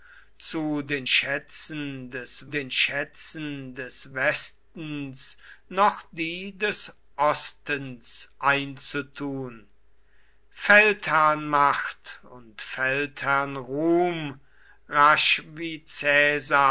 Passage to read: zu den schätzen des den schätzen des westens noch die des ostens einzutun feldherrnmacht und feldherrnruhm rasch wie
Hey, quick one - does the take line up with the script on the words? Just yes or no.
yes